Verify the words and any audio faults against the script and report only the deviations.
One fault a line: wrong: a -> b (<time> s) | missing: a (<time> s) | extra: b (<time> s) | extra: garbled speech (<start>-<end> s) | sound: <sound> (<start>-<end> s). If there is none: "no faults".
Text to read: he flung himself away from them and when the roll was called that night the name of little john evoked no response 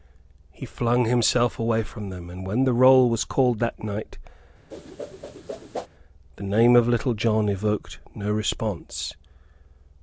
sound: whoosh (4.7-5.9 s)